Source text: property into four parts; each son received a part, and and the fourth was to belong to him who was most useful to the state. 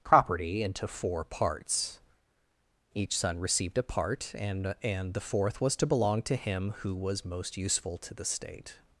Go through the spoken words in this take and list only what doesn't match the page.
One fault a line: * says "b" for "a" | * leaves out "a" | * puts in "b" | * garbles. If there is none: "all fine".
all fine